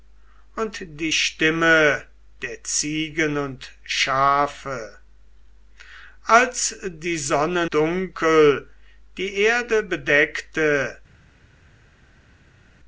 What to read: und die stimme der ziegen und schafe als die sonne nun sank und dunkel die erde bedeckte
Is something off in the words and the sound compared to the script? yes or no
yes